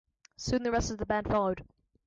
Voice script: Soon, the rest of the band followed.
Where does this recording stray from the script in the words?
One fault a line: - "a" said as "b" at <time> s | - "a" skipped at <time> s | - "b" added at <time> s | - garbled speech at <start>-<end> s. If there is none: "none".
none